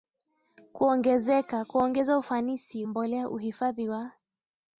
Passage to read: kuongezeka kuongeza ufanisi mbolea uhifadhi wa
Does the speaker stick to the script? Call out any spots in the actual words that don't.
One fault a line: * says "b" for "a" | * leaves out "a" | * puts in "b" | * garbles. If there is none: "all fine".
all fine